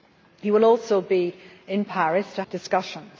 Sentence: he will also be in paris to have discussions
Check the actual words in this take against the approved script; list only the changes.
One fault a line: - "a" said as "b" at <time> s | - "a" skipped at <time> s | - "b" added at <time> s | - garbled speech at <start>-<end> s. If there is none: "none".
- "have" skipped at 2.4 s